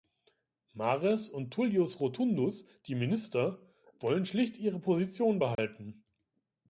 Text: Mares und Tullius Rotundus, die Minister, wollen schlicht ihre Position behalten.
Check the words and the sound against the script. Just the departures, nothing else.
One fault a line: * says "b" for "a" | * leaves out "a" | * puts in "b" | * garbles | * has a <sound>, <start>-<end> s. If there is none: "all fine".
* has a dropout, 5.6-5.6 s